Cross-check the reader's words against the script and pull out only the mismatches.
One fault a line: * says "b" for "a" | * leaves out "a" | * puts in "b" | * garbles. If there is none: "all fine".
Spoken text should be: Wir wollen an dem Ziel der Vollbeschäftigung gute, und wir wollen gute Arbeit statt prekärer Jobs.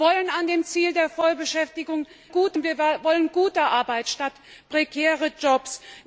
all fine